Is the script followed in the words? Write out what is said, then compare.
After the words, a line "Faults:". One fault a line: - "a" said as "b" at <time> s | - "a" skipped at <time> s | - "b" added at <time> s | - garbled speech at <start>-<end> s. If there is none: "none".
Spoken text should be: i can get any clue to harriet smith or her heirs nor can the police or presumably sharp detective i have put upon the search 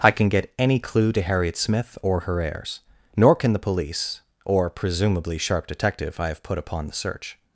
i can get any clue to harriet smith or her heirs nor can the police or presumably sharp detective i have put upon the search
Faults:
none